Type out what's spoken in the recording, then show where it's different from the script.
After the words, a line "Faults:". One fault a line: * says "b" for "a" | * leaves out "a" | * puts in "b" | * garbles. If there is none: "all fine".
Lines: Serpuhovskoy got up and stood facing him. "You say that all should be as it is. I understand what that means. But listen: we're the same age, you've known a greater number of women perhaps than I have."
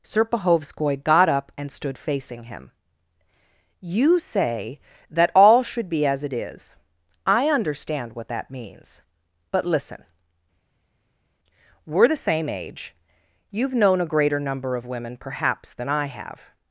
Serpuhovskoy got up and stood facing him. "You say that all should be as it is. I understand what that means. But listen: we're the same age, you've known a greater number of women perhaps than I have."
Faults:
all fine